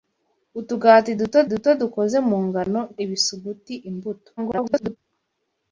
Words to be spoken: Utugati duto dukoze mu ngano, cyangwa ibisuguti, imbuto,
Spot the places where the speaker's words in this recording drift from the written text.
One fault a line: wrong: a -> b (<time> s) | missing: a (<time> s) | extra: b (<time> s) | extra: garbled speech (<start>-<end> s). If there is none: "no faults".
extra: duto (1.5 s)
missing: cyangwa (2.8 s)
extra: garbled speech (4.4-5.0 s)